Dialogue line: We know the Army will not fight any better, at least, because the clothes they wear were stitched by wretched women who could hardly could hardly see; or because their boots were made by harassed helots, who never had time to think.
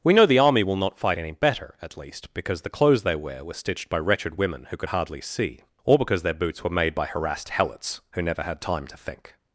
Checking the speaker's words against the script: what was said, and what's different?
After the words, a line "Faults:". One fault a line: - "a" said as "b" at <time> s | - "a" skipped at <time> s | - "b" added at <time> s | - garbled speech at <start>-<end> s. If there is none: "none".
We know the Army will not fight any better, at least, because the clothes they wear were stitched by wretched women who could hardly see; or because their boots were made by harassed helots, who never had time to think.
Faults:
- "could hardly" skipped at 5.2 s